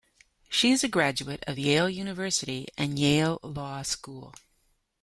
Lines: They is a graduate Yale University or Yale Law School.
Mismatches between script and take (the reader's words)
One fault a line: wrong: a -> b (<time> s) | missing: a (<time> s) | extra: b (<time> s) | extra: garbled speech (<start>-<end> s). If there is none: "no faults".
wrong: They -> She (0.5 s)
extra: of (1.4 s)
wrong: or -> and (2.8 s)